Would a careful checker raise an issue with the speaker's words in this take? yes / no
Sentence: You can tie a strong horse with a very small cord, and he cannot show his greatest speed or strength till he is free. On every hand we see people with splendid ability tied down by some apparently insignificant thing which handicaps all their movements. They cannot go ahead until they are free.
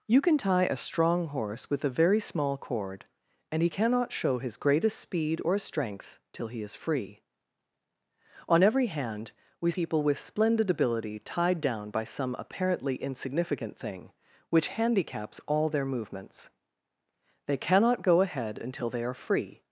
yes